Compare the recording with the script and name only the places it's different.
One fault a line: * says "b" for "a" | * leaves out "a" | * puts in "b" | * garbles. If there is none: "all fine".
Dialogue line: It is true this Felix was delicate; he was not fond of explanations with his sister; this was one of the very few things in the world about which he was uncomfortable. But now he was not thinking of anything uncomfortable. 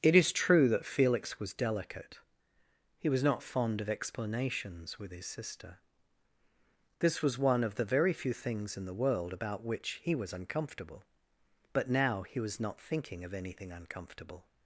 * says "that" for "this"